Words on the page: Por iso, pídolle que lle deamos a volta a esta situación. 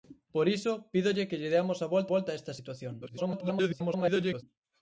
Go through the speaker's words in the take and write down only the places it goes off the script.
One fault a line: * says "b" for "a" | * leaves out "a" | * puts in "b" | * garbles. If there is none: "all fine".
* puts in "volta"
* garbles